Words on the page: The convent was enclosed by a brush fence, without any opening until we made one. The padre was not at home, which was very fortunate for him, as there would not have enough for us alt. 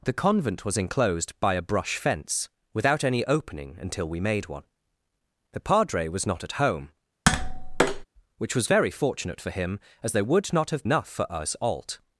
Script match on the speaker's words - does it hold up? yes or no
yes